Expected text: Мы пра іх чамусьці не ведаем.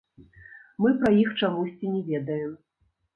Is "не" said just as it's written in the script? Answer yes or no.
yes